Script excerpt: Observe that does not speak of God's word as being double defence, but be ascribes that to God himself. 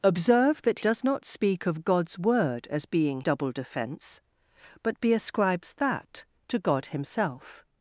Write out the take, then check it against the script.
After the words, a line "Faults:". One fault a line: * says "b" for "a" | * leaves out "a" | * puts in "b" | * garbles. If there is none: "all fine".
Observe that does not speak of God's word as being double defence, but be ascribes that to God himself.
Faults:
all fine